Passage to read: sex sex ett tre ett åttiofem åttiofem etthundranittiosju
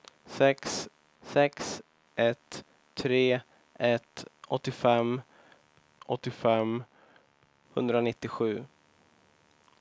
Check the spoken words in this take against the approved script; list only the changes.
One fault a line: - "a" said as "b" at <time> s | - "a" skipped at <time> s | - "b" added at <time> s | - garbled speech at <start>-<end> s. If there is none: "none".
none